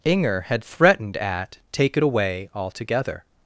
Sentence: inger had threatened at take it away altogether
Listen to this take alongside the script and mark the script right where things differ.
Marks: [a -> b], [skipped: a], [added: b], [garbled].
inger had threatened at take it away altogether